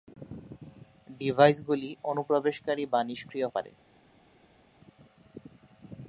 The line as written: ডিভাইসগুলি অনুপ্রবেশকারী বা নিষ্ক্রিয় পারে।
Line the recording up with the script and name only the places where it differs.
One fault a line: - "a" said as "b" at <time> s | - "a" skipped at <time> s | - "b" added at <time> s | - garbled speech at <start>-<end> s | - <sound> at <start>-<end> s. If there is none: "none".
none